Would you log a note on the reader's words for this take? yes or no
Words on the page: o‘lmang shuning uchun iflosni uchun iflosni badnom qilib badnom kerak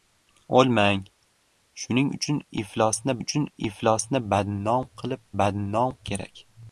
no